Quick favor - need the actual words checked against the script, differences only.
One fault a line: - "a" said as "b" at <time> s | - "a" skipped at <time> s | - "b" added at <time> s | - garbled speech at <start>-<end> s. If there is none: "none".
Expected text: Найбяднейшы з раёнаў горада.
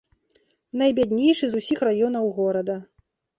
- "усіх" added at 1.6 s